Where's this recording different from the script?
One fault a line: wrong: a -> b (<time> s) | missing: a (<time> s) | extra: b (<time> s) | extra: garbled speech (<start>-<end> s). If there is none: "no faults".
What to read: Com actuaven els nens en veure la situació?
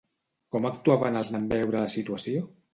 missing: nens (1.3 s)